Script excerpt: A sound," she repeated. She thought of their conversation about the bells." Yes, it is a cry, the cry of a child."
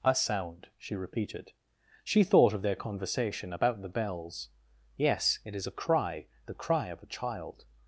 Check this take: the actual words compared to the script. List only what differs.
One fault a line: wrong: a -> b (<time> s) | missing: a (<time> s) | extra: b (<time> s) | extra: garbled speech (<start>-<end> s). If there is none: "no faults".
no faults